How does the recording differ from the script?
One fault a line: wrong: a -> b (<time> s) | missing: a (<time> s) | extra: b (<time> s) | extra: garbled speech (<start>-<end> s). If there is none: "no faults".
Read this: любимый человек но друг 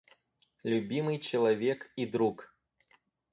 wrong: но -> и (1.9 s)